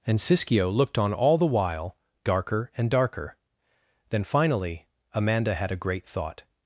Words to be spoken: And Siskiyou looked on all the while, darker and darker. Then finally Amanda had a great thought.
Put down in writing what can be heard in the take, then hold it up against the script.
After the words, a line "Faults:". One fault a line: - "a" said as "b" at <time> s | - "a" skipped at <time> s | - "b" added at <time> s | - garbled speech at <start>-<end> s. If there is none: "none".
And Siskiyou looked on all the while, darker and darker. Then finally Amanda had a great thought.
Faults:
none